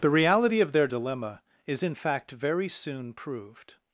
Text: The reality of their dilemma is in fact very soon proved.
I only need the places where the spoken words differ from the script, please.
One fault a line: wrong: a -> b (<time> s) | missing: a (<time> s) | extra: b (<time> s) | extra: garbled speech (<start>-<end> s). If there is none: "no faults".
no faults